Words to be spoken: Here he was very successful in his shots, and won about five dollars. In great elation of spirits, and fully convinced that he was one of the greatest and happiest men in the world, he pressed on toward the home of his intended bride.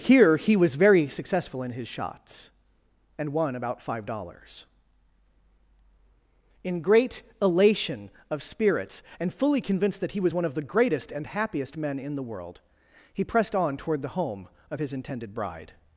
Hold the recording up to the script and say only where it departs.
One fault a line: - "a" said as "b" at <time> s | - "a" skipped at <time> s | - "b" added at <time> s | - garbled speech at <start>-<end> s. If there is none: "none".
none